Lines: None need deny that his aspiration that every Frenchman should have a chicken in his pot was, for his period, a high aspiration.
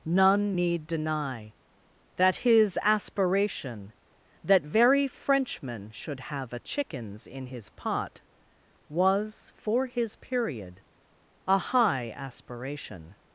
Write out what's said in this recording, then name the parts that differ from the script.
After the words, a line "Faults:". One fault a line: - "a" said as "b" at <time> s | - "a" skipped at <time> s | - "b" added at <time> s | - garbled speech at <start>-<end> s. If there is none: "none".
None need deny that his aspiration that very Frenchman should have a chickens in his pot was, for his period, a high aspiration.
Faults:
- "every" said as "very" at 4.6 s
- "chicken" said as "chickens" at 6.6 s